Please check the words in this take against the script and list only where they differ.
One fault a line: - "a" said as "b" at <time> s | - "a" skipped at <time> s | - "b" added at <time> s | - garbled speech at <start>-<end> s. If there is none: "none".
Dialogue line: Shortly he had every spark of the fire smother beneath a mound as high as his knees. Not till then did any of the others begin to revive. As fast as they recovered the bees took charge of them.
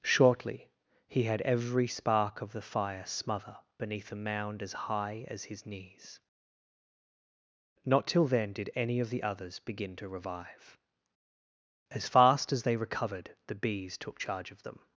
none